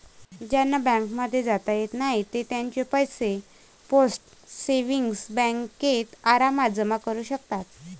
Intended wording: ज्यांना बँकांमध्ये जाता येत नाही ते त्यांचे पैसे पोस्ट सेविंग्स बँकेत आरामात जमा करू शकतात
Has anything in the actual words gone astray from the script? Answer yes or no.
no